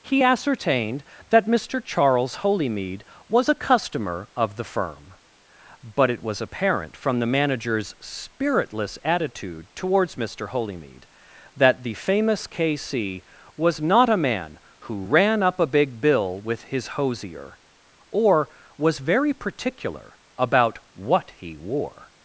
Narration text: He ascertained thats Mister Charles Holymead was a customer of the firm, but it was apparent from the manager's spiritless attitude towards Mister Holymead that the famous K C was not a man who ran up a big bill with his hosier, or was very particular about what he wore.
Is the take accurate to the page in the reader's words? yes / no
no